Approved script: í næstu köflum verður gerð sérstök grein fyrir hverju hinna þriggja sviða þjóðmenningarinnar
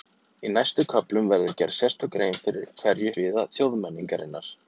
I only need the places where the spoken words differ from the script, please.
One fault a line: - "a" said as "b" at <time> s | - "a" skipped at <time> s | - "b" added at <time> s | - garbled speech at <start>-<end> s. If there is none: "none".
- "hinna þriggja" skipped at 3.1 s